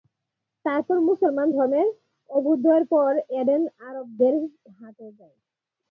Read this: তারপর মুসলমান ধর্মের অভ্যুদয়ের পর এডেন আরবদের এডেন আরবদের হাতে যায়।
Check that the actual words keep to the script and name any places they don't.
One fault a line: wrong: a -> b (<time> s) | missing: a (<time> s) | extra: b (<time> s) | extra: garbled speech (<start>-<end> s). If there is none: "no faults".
missing: এডেন আরবদের (4.3 s)